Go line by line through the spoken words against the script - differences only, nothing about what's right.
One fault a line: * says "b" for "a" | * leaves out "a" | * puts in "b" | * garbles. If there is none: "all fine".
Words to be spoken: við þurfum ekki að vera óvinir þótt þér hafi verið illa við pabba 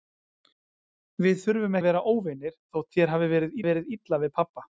* leaves out "ekki"
* puts in "verið"